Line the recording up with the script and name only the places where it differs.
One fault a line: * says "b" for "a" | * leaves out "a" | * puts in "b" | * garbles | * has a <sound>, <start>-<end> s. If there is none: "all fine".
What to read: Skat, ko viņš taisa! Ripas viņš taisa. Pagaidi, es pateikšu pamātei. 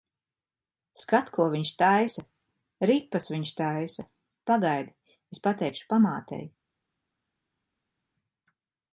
all fine